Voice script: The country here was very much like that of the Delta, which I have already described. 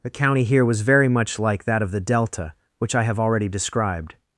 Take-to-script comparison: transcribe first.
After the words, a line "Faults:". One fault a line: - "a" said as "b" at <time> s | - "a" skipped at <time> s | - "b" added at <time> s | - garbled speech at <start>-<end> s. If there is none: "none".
The county here was very much like that of the Delta, which I have already described.
Faults:
- "country" said as "county" at 0.1 s